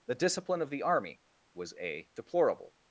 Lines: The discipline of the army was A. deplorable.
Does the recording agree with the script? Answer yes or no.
yes